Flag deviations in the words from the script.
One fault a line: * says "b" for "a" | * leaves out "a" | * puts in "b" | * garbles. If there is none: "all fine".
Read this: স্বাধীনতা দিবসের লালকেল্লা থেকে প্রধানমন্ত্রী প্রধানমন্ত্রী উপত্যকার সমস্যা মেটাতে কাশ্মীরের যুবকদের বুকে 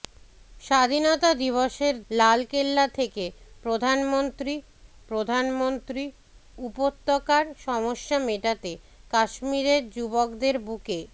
all fine